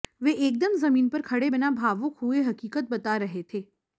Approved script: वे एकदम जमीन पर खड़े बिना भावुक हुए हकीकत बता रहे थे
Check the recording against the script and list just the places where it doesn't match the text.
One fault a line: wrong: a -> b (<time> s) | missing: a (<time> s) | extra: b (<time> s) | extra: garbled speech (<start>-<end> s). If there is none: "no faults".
no faults